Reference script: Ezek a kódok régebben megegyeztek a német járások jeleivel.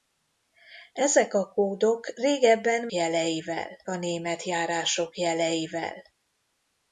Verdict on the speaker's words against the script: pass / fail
fail